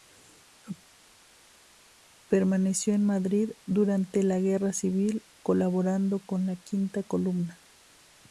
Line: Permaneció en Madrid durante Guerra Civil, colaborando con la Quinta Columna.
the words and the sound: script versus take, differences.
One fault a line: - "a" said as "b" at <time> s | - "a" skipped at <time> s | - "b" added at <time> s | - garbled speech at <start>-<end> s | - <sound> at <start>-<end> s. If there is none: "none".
- "la" added at 4.2 s